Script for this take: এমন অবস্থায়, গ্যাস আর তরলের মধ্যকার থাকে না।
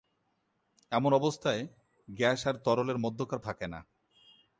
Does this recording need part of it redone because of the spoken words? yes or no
no